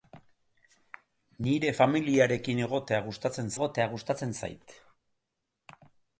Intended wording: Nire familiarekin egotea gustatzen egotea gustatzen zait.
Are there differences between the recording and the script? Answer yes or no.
no